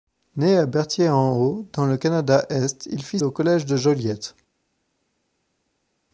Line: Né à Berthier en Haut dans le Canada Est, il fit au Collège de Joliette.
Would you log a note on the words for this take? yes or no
no